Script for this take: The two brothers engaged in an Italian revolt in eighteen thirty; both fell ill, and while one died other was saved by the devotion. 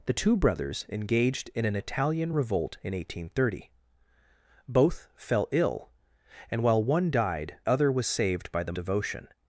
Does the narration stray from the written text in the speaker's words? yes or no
no